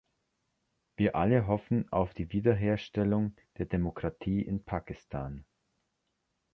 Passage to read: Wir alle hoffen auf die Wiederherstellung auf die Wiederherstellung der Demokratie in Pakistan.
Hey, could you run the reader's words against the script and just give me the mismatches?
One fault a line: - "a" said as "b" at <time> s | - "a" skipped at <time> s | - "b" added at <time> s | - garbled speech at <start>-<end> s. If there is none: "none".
- "auf die Wiederherstellung" skipped at 3.3 s